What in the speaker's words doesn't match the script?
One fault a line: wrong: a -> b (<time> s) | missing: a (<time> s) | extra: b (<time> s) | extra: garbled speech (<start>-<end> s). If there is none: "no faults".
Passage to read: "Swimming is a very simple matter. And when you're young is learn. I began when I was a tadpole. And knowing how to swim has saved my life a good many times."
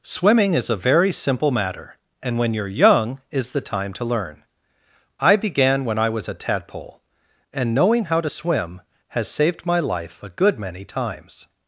extra: the time to (3.5 s)